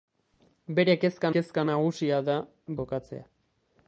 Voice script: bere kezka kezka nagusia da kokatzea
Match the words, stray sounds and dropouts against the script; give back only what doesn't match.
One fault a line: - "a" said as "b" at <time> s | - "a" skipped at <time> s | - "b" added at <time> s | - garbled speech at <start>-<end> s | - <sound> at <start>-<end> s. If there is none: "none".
none